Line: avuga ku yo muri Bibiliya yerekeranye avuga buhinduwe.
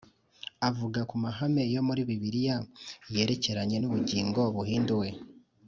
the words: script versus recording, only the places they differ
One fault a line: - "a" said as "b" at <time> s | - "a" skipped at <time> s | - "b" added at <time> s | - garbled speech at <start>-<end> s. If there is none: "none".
- "mahame" added at 1.2 s
- "avuga" said as "n'ubugingo" at 3.8 s